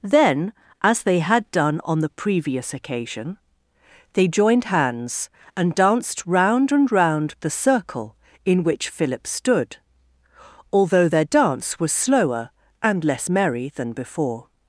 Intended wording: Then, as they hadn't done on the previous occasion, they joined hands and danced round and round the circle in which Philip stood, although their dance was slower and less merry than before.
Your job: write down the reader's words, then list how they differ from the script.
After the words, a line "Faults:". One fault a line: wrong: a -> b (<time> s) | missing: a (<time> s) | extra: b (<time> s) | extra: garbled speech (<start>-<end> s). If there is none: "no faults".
Then, as they had done on the previous occasion, they joined hands and danced round and round the circle in which Philip stood, although their dance was slower and less merry than before.
Faults:
wrong: hadn't -> had (1.2 s)